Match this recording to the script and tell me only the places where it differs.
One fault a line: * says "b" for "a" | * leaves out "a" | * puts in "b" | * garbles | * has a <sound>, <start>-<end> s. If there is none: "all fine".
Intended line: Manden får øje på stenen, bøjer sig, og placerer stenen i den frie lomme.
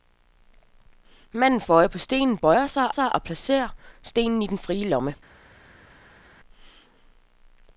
* puts in "sig"